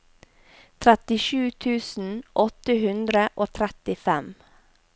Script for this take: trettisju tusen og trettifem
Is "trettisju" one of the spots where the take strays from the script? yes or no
no